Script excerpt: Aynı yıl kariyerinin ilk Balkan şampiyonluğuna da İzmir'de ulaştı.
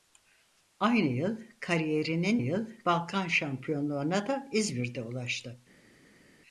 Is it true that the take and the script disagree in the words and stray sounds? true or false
true